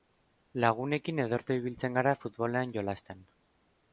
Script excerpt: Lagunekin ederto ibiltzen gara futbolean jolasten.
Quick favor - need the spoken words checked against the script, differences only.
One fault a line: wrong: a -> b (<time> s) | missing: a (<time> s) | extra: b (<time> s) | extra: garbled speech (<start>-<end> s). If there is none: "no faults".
no faults